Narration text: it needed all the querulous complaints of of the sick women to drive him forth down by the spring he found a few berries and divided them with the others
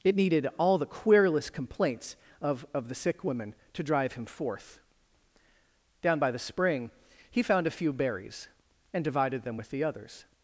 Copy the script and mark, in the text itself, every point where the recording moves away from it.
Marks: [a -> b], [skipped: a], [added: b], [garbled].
it needed all the querulous complaints of of the sick women to drive him forth down by the spring he found a few berries and divided them with the others